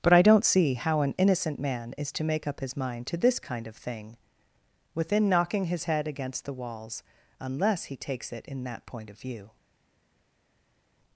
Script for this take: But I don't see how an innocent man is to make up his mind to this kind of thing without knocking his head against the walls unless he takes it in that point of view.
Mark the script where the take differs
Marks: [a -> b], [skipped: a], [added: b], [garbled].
But I don't see how an innocent man is to make up his mind to this kind of thing [without -> within] knocking his head against the walls unless he takes it in that point of view.